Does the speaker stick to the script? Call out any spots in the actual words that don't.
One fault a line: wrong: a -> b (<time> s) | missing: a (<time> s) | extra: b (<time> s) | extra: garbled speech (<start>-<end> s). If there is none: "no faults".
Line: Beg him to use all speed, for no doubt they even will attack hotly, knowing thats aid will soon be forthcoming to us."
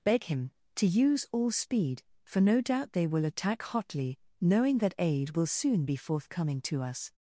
missing: even (3.0 s)
wrong: thats -> that (4.8 s)